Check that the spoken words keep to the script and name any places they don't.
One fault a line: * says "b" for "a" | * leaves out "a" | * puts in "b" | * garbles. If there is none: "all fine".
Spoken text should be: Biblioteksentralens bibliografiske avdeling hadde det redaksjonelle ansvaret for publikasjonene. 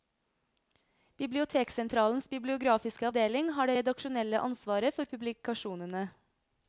* says "har" for "hadde"